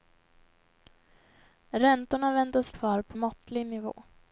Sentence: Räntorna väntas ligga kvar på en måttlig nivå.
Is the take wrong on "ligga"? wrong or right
wrong